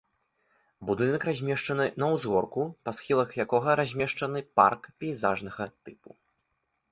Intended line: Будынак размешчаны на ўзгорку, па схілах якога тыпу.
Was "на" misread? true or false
false